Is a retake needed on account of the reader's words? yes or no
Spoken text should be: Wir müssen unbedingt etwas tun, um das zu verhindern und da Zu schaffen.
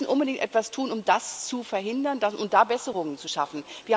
yes